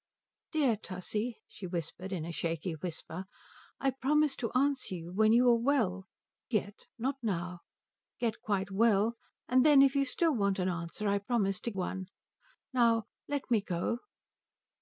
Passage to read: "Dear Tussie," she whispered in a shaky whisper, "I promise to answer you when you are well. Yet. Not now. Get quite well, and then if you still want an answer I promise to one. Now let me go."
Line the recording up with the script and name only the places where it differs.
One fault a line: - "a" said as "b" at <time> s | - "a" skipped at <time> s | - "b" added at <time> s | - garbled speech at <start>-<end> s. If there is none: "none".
none